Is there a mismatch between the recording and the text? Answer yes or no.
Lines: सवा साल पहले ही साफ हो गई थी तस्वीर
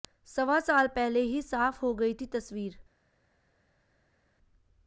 no